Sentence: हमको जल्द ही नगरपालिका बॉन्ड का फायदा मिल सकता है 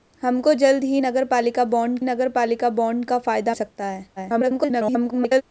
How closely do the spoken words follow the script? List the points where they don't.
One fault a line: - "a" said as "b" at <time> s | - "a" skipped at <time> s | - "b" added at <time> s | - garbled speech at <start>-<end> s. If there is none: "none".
- "नगरपालिका बॉन्ड" added at 2.0 s
- "मिल" skipped at 3.5 s
- garbled speech at 4.2-5.4 s